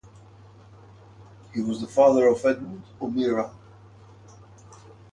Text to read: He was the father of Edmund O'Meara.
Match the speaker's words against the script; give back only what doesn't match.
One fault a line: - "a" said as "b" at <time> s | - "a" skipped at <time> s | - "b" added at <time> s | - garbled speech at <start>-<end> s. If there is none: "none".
none